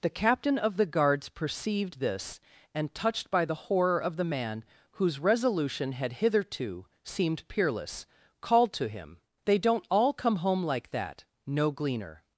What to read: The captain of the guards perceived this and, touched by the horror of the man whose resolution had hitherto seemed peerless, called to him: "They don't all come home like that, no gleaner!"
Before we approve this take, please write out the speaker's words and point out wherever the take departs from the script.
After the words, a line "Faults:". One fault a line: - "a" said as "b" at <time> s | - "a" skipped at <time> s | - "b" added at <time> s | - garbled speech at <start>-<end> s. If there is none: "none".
The captain of the guards perceived this and, touched by the horror of the man whose resolution had hitherto seemed peerless, called to him: "They don't all come home like that, no gleaner!"
Faults:
none